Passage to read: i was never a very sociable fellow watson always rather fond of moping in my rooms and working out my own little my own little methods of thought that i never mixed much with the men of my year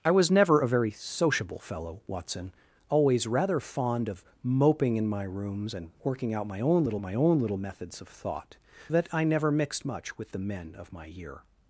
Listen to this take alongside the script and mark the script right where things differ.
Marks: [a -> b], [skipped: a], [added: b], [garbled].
i was never a very sociable fellow watson always rather fond of moping in my rooms and working out my own little my own little methods of thought that i never mixed much with the men of my year